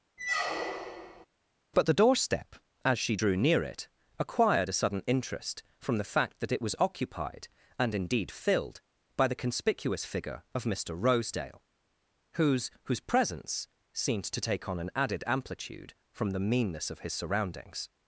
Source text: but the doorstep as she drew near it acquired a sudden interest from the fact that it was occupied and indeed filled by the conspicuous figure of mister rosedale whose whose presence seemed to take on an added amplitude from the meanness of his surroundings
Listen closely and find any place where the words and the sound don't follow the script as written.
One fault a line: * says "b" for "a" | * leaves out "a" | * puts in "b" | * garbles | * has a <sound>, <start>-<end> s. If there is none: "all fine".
* has a squeak, 0.2-1.3 s